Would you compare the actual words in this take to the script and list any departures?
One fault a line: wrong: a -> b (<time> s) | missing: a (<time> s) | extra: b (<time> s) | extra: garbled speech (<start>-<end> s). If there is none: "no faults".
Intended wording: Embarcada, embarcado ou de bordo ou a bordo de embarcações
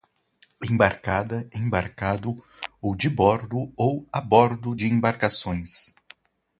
no faults